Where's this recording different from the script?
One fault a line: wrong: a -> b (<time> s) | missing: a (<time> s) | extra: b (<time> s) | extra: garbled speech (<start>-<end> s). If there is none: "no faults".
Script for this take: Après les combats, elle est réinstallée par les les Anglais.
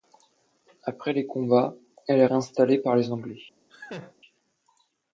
missing: les (3.1 s)